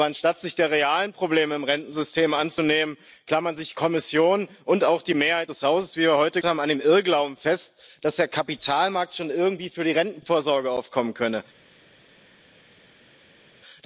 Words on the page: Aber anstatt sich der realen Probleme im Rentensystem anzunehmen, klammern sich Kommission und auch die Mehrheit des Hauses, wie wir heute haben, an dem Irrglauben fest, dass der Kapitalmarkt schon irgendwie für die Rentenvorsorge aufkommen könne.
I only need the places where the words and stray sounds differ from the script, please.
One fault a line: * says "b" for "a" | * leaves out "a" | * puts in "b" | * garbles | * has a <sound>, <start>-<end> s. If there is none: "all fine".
all fine